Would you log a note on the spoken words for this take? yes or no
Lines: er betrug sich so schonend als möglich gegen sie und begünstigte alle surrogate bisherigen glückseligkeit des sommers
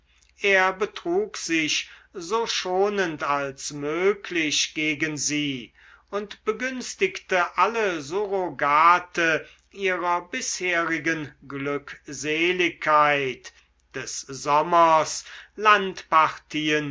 yes